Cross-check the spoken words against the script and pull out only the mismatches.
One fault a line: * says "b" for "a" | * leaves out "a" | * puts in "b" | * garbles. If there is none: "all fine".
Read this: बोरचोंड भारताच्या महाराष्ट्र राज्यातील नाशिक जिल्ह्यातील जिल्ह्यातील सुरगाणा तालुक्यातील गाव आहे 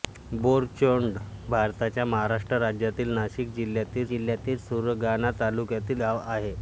all fine